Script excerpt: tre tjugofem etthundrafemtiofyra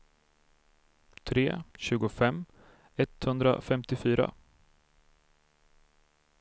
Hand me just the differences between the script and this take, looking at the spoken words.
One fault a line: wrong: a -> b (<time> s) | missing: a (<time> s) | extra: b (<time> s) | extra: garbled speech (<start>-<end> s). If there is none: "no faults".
no faults